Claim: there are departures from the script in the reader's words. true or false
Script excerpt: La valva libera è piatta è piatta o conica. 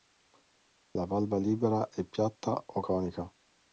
true